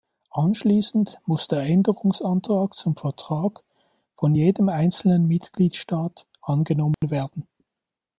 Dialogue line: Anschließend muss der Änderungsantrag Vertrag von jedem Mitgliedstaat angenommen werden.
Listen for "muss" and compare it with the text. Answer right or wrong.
right